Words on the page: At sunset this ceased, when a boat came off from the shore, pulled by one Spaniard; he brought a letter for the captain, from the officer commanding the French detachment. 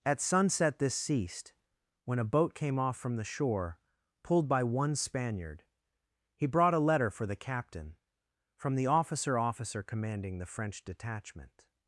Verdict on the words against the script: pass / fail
fail